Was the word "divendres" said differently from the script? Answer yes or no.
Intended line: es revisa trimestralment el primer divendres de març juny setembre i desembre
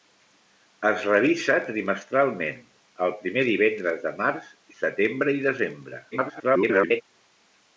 no